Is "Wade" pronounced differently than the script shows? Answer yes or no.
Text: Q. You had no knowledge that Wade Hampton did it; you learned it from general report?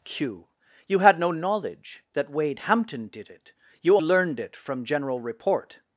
no